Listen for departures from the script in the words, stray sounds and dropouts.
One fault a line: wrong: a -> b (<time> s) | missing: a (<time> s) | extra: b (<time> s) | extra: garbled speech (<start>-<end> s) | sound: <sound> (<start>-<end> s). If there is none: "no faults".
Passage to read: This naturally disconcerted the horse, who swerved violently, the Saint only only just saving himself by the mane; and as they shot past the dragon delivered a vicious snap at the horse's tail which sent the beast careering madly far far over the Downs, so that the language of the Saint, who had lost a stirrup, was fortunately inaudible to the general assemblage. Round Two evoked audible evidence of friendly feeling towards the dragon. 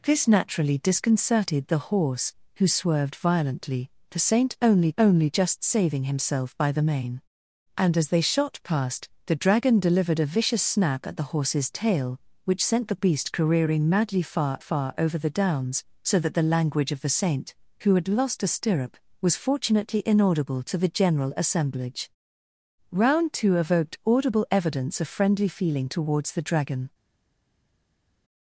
no faults